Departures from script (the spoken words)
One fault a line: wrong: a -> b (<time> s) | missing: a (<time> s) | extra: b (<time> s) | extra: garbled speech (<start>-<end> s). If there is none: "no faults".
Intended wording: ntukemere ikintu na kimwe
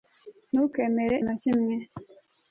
missing: ikintu (1.1 s)